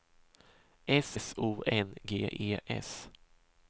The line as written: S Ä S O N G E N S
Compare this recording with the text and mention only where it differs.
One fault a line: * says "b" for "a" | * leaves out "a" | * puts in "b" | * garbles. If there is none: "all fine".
* leaves out "Ä"
* leaves out "N"